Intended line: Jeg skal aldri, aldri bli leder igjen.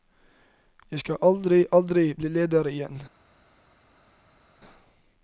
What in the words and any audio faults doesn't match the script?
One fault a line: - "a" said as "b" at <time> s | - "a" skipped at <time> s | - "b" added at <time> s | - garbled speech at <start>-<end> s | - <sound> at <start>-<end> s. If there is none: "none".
none